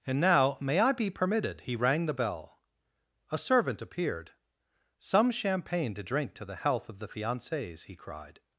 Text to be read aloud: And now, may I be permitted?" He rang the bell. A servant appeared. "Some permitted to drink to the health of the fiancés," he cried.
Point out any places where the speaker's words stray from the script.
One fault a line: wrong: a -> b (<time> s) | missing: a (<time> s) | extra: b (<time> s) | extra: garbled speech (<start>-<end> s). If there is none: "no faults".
wrong: permitted -> champagne (5.3 s)